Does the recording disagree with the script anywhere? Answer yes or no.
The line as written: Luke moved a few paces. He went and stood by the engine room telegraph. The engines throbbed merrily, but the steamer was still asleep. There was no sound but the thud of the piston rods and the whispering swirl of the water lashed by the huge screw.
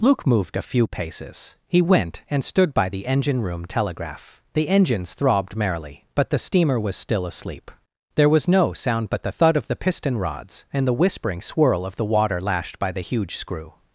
no